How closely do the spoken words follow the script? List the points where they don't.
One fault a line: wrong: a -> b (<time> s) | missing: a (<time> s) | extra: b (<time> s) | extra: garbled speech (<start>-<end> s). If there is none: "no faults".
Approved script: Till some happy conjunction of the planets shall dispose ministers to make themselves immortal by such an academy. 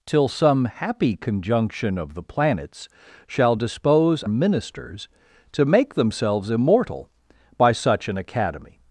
no faults